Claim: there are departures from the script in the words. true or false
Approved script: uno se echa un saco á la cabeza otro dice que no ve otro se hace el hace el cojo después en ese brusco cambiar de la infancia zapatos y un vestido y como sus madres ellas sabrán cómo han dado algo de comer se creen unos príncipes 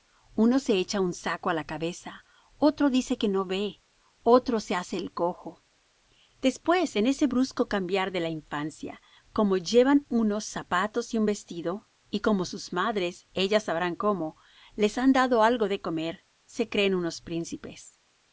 true